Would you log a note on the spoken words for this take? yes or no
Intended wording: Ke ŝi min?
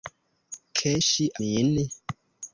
no